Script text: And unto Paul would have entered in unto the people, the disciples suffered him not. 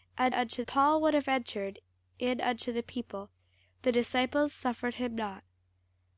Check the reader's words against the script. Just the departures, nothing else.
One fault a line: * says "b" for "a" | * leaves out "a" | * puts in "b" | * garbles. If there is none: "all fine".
all fine